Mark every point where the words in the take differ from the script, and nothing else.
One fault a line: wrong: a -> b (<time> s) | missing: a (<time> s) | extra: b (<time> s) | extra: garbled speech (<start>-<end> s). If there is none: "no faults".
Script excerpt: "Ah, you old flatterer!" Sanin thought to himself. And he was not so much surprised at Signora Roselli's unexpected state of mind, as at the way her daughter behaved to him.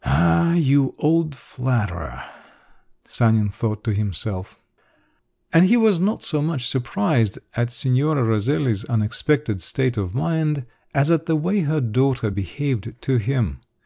no faults